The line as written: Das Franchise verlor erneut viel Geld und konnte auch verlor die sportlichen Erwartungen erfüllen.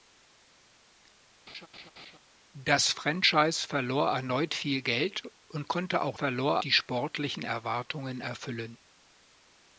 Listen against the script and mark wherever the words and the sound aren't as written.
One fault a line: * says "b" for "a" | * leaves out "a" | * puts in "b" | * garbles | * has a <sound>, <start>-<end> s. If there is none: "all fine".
* has a laugh, 1.5-2.2 s